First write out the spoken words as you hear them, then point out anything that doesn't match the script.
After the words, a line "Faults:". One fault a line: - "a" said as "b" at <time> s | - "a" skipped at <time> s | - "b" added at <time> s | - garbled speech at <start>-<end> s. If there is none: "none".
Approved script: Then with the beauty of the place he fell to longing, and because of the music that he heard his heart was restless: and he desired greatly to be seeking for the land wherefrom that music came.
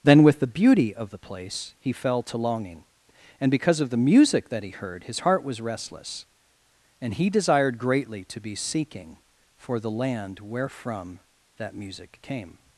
Then with the beauty of the place he fell to longing, and because of the music that he heard his heart was restless: and he desired greatly to be seeking for the land wherefrom that music came.
Faults:
none